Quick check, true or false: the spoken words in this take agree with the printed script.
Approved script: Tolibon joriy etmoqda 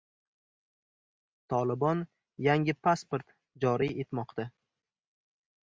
false